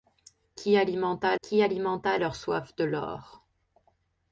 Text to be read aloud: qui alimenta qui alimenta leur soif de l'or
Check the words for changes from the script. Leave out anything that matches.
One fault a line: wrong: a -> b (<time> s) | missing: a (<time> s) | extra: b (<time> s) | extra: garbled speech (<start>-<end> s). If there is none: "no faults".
no faults